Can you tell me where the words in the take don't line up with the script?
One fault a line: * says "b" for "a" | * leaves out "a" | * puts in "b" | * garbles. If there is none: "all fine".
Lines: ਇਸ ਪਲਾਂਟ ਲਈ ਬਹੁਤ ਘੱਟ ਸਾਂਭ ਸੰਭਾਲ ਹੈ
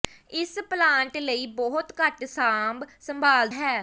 all fine